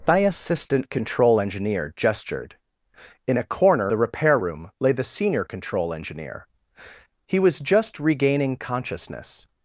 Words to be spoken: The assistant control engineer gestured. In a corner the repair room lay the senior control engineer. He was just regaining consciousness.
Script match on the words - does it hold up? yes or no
yes